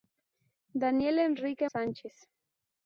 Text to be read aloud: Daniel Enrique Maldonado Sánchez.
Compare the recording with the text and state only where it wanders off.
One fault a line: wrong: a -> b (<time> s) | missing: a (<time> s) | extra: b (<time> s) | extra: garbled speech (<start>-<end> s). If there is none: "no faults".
missing: Maldonado (1.7 s)